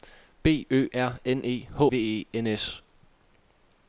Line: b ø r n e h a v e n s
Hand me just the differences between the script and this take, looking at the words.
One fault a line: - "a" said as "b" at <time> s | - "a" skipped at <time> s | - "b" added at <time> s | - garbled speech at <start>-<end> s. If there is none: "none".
- "a" skipped at 1.8 s